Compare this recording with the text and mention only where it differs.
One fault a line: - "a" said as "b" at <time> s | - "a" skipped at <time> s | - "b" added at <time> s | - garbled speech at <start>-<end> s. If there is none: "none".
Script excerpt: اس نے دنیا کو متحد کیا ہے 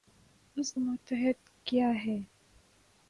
- "نے دنیا کو" skipped at 0.7 s